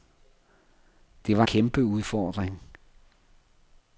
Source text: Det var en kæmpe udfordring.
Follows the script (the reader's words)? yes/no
no